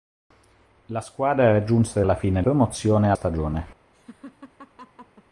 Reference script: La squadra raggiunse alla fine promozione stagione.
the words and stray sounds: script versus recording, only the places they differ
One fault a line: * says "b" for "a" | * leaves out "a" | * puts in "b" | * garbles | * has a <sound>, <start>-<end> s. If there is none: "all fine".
* has a laugh, 3.9-5.2 s